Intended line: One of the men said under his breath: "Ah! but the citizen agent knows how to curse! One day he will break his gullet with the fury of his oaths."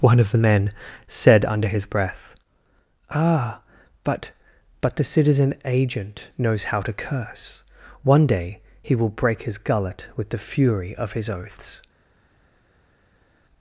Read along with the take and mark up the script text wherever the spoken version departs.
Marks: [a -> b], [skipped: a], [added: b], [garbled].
One of the men said under his breath: "Ah! but [added: but] the citizen agent knows how to curse! One day he will break his gullet with the fury of his oaths."